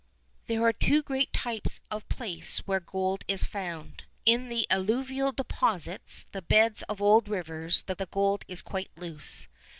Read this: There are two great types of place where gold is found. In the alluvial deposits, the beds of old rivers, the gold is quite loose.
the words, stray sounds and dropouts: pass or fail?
fail